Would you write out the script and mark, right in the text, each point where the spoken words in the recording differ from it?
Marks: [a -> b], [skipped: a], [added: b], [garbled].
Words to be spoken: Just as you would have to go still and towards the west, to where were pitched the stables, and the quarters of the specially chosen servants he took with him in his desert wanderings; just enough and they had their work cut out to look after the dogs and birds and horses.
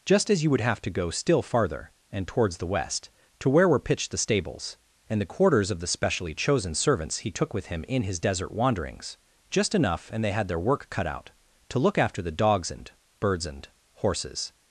Just as you would have to go still [added: farther] and towards the west, to where were pitched the stables, and the quarters of the specially chosen servants he took with him in his desert wanderings; just enough and they had their work cut out to look after the dogs and birds and horses.